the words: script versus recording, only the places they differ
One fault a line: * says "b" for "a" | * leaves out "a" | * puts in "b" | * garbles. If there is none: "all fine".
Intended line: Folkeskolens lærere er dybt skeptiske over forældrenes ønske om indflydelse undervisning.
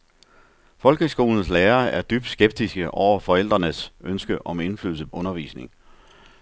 all fine